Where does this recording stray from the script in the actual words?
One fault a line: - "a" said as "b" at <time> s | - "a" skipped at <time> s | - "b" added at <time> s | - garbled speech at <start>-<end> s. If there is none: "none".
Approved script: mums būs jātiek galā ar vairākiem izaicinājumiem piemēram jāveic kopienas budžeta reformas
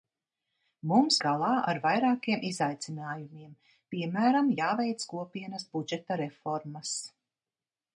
- "būs jātiek" skipped at 1.2 s